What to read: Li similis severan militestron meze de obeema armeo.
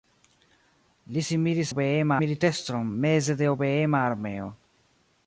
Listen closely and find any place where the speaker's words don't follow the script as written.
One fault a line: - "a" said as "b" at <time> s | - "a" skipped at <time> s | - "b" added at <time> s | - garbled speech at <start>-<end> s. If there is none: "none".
- "severan" said as "obeema" at 1.7 s